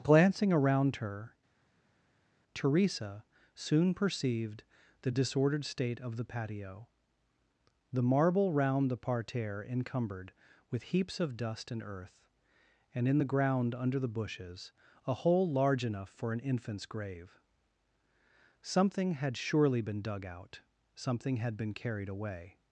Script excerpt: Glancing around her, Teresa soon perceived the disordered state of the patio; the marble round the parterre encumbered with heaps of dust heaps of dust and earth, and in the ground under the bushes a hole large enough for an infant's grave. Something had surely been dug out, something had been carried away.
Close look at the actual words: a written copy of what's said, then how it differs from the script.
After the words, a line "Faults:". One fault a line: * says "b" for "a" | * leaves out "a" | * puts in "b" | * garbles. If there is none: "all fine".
Glancing around her, Teresa soon perceived the disordered state of the patio; the marble round the parterre encumbered with heaps of dust and earth, and in the ground under the bushes a hole large enough for an infant's grave. Something had surely been dug out, something had been carried away.
Faults:
* leaves out "heaps of dust"